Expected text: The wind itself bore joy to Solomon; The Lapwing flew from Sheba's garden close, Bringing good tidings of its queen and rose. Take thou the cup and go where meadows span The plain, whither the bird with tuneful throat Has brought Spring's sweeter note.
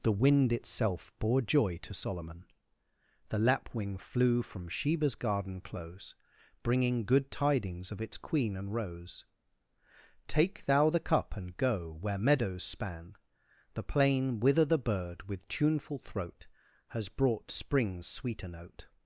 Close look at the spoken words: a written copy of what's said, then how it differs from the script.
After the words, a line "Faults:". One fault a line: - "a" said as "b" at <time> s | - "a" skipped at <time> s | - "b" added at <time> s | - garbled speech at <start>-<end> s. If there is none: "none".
The wind itself bore joy to Solomon; The Lapwing flew from Sheba's garden close, Bringing good tidings of its queen and rose. Take thou the cup and go where meadows span The plain, whither the bird with tuneful throat Has brought Spring's sweeter note.
Faults:
none